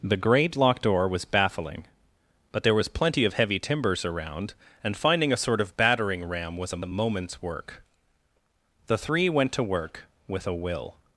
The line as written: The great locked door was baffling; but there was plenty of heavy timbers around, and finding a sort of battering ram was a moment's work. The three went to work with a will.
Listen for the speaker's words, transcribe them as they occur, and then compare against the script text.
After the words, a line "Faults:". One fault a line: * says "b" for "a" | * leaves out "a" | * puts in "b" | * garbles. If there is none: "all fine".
The great locked door was baffling; but there was plenty of heavy timbers around, and finding a sort of battering ram was a a moment's work. The three went to work with a will.
Faults:
* puts in "a"